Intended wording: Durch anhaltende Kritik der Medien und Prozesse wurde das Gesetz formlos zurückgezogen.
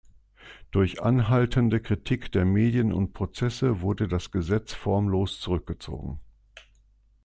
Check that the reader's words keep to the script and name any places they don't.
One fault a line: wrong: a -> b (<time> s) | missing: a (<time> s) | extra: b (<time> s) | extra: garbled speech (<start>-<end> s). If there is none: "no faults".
no faults